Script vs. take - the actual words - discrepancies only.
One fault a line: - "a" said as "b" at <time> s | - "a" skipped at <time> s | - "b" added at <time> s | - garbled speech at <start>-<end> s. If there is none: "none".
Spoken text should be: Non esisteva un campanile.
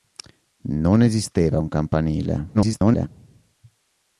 - garbled speech at 2.5-3.1 s